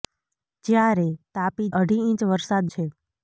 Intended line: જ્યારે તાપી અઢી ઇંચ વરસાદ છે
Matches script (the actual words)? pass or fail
pass